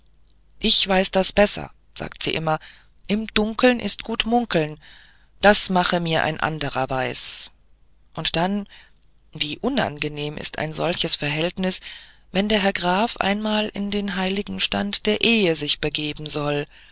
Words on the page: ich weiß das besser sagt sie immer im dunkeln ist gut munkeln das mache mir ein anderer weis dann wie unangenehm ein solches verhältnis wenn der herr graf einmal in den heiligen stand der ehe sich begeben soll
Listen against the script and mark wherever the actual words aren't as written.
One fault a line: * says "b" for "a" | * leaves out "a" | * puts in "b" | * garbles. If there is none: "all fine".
* puts in "und"
* puts in "ist"